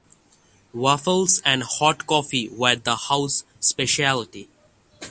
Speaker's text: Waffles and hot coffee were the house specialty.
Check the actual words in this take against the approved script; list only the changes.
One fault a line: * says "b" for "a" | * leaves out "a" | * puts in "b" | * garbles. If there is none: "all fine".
all fine